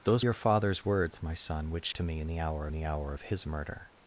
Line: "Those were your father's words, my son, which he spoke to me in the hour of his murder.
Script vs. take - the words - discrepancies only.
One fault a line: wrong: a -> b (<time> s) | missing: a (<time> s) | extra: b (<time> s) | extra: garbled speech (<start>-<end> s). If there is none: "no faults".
missing: were (0.2 s)
missing: he spoke (1.9 s)
extra: the hour (2.7 s)